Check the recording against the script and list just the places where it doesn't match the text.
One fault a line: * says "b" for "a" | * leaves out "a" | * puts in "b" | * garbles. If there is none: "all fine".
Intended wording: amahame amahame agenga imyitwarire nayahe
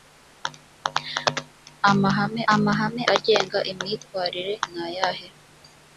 all fine